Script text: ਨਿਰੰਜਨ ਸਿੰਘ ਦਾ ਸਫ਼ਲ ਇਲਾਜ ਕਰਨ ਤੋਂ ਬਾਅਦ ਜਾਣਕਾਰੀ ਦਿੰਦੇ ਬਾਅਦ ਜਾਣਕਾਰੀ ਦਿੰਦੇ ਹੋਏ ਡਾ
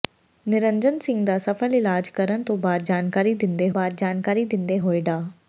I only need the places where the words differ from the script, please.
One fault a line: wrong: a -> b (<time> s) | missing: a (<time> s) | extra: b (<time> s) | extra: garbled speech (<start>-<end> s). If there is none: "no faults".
no faults